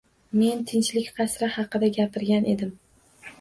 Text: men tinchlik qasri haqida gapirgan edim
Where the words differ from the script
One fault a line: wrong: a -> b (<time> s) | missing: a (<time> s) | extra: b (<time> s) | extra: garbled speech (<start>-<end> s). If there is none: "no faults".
no faults